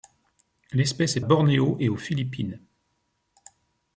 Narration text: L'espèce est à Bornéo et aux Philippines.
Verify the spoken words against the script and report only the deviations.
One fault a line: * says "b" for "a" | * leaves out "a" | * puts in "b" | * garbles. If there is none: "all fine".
all fine